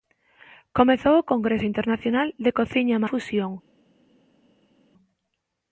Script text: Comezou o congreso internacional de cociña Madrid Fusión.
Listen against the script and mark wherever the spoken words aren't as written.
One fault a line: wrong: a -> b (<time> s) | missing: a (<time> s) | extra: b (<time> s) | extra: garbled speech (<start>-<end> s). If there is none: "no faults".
missing: Madrid (3.0 s)